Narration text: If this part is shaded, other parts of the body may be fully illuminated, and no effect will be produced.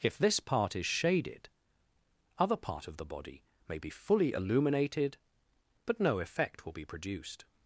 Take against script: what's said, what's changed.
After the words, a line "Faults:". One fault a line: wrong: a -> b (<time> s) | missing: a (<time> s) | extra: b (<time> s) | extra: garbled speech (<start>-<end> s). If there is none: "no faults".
If this part is shaded, other part of the body may be fully illuminated, but no effect will be produced.
Faults:
wrong: parts -> part (2.5 s)
wrong: and -> but (5.9 s)